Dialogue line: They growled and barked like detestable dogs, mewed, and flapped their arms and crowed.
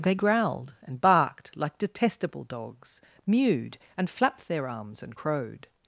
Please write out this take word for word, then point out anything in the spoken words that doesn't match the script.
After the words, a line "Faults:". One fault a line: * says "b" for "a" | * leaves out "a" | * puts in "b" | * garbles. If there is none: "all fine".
They growled and barked like detestable dogs, mewed, and flapped their arms and crowed.
Faults:
all fine